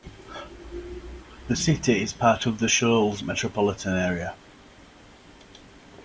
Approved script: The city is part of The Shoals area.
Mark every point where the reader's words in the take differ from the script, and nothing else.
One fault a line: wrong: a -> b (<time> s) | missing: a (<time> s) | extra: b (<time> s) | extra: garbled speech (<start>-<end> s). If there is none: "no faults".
extra: metropolitan (3.2 s)